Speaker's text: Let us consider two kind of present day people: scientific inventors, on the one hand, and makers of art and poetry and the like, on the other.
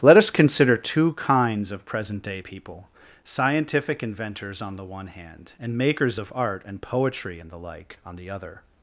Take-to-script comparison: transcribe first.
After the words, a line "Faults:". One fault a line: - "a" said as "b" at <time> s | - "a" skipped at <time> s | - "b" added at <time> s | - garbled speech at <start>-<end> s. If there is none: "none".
Let us consider two kinds of present day people: scientific inventors, on the one hand, and makers of art and poetry and the like, on the other.
Faults:
- "kind" said as "kinds" at 1.1 s